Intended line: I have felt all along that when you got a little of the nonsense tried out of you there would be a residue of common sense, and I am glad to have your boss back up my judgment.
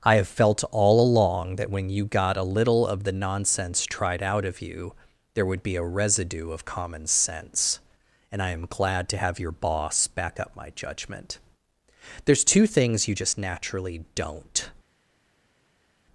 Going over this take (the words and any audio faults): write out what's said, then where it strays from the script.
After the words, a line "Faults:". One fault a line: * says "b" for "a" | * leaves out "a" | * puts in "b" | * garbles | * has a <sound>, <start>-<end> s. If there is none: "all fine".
I have felt all along that when you got a little of the nonsense tried out of you there would be a residue of common sense, and I am glad to have your boss back up my judgment. There's two things you just naturally don't
Faults:
* puts in "There's two things you just naturally don't"